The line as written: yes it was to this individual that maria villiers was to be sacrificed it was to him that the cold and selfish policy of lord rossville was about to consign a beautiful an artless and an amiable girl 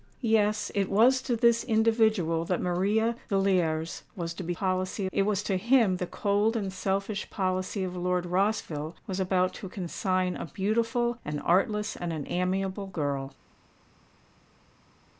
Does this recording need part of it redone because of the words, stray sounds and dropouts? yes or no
yes